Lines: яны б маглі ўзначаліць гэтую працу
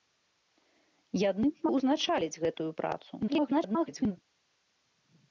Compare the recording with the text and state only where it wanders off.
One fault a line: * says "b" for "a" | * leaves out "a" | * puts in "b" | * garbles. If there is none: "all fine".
* leaves out "маглі"
* garbles